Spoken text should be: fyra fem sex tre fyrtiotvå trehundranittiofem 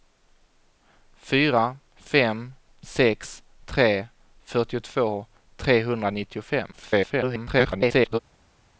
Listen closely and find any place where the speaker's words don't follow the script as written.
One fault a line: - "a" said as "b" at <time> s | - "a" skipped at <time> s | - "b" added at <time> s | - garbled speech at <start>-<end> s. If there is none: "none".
- garbled speech at 6.7-8.2 s